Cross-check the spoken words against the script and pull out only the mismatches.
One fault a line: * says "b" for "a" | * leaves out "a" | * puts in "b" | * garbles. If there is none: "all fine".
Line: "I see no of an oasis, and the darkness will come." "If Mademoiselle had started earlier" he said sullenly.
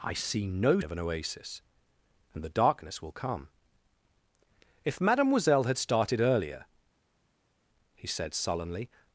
all fine